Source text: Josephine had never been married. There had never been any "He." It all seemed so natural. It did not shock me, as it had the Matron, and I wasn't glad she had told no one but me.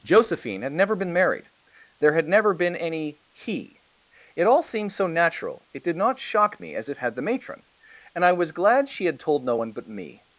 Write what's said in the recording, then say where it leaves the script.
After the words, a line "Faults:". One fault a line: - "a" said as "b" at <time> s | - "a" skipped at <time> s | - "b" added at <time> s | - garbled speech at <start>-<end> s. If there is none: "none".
Josephine had never been married. There had never been any "He." It all seemed so natural. It did not shock me, as it had the Matron, and I was glad she had told no one but me.
Faults:
- "wasn't" said as "was" at 8.3 s